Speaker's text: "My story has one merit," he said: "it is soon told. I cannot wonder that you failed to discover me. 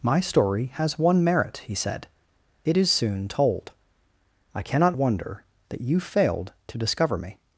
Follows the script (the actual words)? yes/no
yes